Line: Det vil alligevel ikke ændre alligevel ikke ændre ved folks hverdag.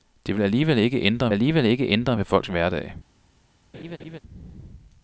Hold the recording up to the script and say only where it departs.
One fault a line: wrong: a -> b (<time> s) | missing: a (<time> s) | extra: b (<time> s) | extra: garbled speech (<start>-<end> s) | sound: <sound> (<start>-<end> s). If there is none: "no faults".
sound: laugh (3.7-4.2 s)